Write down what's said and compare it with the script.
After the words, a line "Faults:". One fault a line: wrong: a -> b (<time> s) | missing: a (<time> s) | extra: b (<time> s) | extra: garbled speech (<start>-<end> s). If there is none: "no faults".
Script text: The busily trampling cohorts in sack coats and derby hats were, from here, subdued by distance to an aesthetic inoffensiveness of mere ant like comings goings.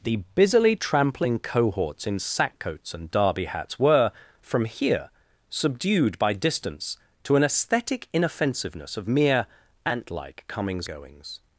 The busily trampling cohorts in sack coats and derby hats were, from here, subdued by distance to an aesthetic inoffensiveness of mere ant like comings goings.
Faults:
no faults